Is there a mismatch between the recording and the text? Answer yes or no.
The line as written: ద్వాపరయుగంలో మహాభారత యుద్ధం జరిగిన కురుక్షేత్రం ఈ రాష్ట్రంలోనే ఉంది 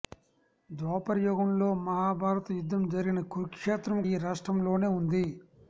no